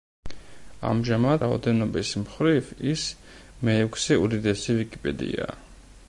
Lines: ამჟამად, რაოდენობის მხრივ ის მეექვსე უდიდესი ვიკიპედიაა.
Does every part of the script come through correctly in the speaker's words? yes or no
yes